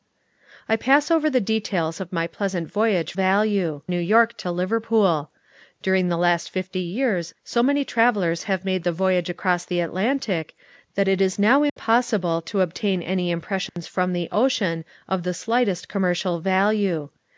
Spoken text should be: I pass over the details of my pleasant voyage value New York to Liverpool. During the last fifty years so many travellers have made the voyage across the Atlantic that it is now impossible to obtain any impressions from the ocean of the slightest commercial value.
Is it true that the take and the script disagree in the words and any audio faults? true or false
true